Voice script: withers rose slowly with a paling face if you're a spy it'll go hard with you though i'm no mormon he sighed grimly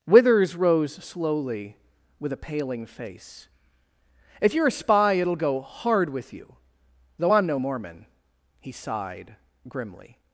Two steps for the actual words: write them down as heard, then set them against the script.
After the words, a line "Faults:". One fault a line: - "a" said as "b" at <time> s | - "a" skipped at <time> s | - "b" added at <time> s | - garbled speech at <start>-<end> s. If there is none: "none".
withers rose slowly with a paling face if you're a spy it'll go hard with you though i'm no mormon he sighed grimly
Faults:
none